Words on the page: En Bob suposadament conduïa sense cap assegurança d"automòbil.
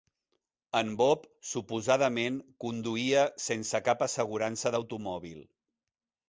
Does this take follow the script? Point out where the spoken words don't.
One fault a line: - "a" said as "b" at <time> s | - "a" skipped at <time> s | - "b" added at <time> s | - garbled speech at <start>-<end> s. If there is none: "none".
none